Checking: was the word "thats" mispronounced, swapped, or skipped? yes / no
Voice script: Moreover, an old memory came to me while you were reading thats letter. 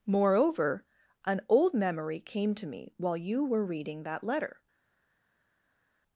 yes